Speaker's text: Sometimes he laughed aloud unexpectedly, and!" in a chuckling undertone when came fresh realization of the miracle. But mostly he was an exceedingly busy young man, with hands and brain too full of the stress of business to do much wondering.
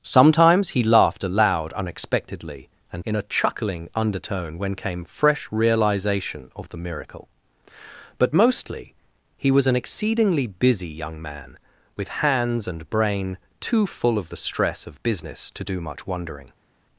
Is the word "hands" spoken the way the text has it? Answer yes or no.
yes